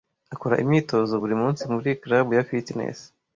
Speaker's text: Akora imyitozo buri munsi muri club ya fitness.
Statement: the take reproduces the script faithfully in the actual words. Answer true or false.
true